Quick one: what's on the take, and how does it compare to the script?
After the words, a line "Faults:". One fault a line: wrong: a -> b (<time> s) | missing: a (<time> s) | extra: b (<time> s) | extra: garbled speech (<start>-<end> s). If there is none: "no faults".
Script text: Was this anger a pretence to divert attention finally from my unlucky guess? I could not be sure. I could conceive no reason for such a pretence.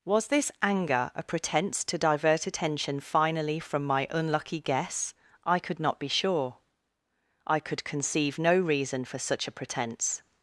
Was this anger a pretence to divert attention finally from my unlucky guess? I could not be sure. I could conceive no reason for such a pretence.
Faults:
no faults